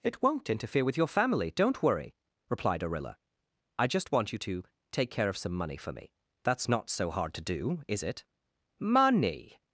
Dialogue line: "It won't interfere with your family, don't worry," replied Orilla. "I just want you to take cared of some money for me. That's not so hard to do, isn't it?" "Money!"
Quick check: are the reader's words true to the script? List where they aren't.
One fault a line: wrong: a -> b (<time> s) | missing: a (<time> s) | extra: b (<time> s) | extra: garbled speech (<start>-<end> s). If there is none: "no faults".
wrong: cared -> care (5.1 s)
wrong: isn't -> is (7.9 s)